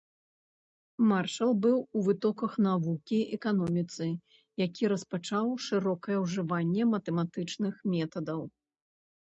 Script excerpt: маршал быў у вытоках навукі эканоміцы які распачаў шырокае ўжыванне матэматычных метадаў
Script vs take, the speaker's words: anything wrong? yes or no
no